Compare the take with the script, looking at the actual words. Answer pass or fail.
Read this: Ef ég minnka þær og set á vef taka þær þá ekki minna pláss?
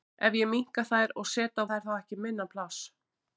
fail